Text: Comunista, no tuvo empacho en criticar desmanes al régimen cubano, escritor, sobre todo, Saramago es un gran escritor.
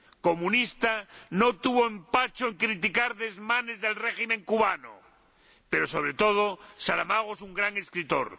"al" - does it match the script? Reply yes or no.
no